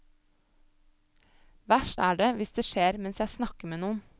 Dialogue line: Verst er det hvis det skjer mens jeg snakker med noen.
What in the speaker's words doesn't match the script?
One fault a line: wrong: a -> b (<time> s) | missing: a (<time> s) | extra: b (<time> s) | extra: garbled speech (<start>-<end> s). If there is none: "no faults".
no faults